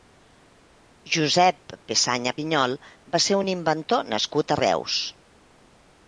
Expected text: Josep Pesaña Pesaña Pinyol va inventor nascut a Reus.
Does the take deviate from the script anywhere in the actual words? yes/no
yes